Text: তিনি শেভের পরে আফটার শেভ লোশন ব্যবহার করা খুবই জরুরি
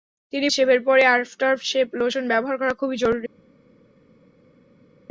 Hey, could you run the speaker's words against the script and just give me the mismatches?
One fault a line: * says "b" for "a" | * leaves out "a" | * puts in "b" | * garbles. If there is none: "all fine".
all fine